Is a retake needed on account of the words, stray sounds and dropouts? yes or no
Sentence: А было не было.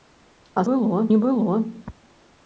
no